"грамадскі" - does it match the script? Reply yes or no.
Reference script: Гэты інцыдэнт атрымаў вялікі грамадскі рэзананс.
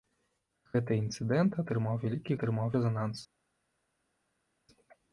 no